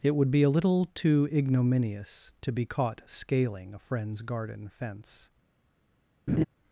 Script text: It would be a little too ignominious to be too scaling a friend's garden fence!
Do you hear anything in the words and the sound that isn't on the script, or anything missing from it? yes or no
yes